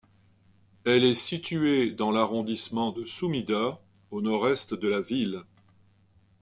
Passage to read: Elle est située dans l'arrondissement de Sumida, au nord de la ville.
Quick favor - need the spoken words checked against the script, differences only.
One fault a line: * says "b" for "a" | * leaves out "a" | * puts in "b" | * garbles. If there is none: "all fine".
* puts in "est"